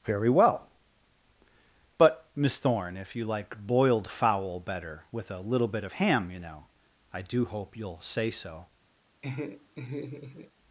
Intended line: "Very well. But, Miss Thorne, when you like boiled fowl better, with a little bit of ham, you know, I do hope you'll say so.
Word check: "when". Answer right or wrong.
wrong